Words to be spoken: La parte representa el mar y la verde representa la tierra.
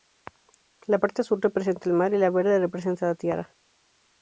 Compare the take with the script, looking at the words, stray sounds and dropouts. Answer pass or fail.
fail